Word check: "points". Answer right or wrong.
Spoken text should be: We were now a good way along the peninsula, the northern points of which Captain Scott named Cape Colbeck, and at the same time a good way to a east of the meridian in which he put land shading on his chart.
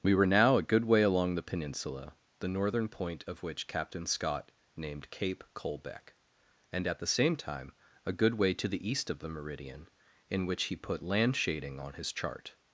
wrong